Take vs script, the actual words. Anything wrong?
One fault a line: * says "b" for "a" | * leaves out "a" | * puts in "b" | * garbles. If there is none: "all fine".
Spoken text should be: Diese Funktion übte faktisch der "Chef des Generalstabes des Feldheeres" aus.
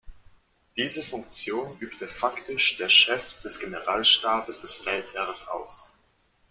all fine